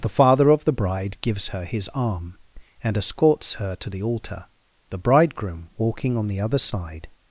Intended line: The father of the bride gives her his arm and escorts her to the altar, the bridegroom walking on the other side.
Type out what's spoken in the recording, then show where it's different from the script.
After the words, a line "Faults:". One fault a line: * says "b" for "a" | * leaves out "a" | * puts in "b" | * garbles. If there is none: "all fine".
The father of the bride gives her his arm and escorts her to the altar, the bridegroom walking on the other side.
Faults:
all fine